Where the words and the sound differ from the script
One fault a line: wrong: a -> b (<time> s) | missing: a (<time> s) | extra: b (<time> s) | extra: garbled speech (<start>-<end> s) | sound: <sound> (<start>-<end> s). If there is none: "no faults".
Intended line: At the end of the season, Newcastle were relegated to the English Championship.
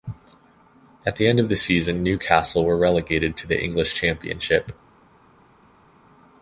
no faults